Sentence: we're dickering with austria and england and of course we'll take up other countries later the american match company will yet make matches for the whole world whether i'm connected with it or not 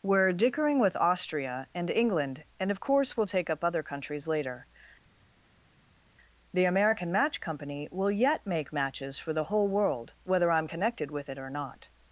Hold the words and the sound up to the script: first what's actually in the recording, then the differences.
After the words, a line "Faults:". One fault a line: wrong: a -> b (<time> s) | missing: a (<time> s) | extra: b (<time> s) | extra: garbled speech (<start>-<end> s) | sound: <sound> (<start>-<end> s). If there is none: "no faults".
we're dickering with austria and england and of course we'll take up other countries later the american match company will yet make matches for the whole world whether i'm connected with it or not
Faults:
no faults